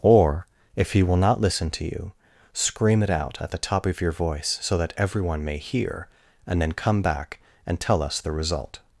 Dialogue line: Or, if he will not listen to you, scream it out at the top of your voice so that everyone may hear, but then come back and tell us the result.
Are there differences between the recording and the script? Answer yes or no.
yes